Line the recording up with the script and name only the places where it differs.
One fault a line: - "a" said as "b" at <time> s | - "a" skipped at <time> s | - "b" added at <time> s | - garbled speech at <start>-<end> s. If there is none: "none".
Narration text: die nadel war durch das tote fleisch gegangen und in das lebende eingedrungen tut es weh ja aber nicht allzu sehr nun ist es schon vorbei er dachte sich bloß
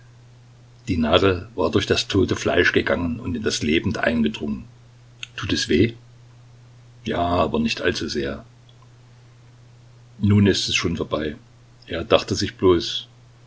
none